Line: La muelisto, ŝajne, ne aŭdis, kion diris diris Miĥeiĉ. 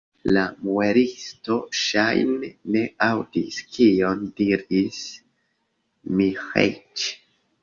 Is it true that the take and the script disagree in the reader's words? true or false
true